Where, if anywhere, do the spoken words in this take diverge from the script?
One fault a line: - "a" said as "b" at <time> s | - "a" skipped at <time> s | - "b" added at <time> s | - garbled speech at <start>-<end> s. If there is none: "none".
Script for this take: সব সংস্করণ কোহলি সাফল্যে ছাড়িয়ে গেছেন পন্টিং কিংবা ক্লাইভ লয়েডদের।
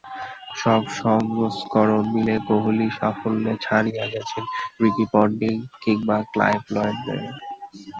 - "মিলে" added at 2.1 s
- "রিকি" added at 4.8 s